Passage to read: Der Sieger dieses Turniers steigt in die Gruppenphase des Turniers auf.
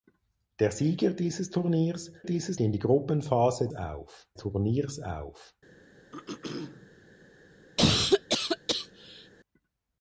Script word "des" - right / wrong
wrong